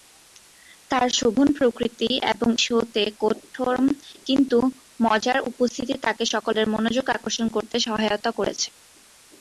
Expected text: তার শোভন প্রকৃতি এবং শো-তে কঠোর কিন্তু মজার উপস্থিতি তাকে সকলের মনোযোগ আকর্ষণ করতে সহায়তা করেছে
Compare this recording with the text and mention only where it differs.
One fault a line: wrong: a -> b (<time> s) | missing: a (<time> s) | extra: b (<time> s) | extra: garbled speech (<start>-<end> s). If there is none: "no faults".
no faults